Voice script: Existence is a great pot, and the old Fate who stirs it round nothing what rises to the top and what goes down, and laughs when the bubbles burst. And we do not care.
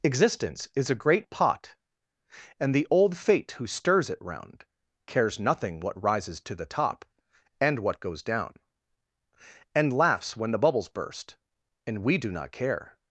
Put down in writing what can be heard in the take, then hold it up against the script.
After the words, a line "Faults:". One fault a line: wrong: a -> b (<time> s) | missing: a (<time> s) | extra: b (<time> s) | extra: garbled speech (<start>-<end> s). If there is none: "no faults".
Existence is a great pot, and the old Fate who stirs it round cares nothing what rises to the top and what goes down, and laughs when the bubbles burst. And we do not care.
Faults:
extra: cares (5.0 s)